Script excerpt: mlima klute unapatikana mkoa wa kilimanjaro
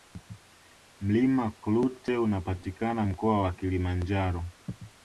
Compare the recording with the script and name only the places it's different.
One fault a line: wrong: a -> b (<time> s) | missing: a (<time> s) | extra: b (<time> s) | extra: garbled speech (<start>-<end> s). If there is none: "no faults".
no faults